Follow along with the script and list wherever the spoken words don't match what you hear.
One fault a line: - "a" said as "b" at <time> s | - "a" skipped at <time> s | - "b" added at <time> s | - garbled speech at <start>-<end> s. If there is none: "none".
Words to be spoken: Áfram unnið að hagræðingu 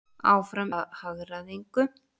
- "unnið" skipped at 0.7 s